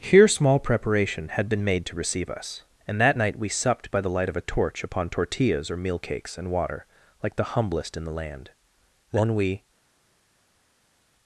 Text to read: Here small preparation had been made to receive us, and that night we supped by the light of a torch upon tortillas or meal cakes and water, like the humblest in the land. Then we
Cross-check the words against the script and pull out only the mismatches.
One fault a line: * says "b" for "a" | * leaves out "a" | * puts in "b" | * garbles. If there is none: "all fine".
all fine